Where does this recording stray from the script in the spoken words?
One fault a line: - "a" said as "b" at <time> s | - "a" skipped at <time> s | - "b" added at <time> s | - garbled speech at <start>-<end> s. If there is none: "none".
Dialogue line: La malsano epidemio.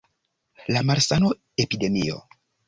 none